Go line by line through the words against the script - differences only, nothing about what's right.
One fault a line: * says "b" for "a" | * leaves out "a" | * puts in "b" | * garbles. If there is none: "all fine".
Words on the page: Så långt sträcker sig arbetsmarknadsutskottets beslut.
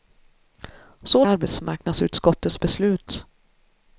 * leaves out "långt sträcker sig"